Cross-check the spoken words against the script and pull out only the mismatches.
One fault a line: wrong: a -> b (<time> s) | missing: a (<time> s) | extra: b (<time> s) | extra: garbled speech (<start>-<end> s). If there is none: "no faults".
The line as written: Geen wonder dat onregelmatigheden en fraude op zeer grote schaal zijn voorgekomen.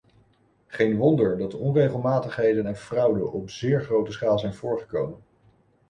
no faults